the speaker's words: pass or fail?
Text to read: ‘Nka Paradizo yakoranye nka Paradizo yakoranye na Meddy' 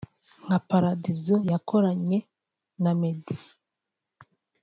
fail